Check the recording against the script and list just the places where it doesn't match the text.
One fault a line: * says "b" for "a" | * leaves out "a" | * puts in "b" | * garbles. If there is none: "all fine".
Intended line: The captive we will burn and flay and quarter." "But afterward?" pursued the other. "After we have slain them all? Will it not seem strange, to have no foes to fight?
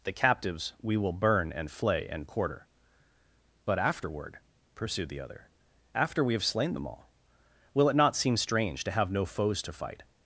* says "captives" for "captive"